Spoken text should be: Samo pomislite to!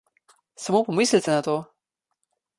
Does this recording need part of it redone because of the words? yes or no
yes